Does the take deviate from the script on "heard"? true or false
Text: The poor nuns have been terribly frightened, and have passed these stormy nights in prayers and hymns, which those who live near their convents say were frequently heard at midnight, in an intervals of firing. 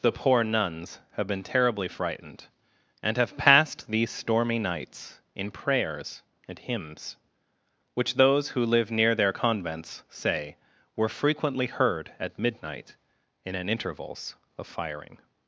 false